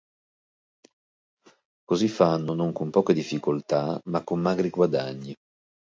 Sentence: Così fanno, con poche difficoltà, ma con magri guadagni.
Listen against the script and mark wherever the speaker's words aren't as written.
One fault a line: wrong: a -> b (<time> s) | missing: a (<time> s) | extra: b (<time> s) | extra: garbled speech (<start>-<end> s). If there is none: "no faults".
extra: non (2.5 s)